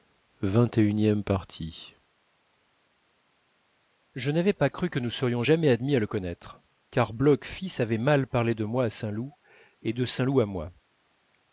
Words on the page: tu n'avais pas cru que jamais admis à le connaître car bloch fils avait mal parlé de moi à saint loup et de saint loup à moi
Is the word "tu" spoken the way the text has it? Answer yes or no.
no